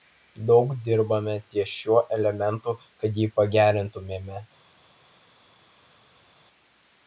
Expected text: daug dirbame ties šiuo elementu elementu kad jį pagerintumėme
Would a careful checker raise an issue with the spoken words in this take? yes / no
yes